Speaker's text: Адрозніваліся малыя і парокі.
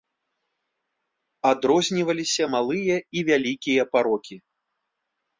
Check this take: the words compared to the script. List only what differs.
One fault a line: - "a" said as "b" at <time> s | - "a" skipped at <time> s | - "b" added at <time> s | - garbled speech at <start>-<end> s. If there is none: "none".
- "вялікія" added at 3.3 s